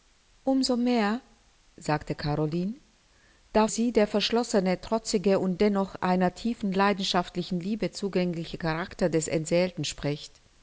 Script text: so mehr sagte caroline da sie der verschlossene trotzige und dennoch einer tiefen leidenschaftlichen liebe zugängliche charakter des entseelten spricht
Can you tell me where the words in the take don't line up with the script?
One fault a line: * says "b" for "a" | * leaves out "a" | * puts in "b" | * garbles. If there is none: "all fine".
all fine